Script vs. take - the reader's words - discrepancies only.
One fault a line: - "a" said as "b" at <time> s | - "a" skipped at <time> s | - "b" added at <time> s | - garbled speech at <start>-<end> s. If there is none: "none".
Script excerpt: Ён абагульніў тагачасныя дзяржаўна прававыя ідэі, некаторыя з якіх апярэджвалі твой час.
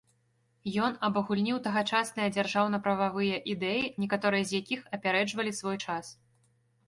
- "твой" said as "свой" at 5.6 s